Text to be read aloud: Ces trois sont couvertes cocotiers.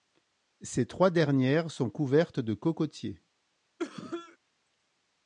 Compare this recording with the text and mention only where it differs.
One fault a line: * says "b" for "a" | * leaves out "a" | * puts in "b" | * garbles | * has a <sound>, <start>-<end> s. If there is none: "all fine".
* puts in "dernières"
* puts in "de"
* has a cough, 3.8-4.4 s